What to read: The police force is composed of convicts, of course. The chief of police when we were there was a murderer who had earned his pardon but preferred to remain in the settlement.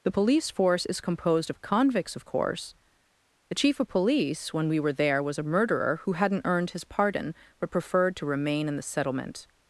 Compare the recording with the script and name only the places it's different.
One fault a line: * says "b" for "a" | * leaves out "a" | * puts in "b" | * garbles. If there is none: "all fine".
* says "hadn't" for "had"